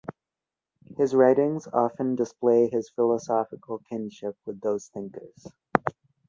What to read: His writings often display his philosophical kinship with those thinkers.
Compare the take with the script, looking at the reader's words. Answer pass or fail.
pass